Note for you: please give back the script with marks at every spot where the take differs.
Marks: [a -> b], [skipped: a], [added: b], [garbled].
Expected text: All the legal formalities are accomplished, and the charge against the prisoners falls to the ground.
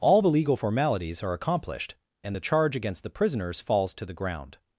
All the legal formalities are accomplished, and the charge against the prisoners falls to the ground.